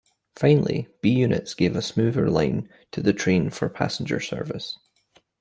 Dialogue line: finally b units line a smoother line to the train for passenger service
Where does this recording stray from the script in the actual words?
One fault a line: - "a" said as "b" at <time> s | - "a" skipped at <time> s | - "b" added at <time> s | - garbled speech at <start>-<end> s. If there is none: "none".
- "line" said as "gave" at 1.5 s